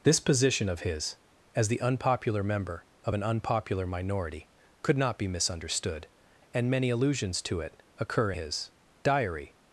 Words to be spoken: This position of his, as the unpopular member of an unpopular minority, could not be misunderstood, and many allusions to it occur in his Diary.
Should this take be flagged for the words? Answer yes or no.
yes